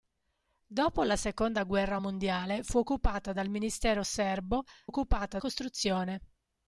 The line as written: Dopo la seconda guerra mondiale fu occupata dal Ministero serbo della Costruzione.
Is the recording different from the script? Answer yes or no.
yes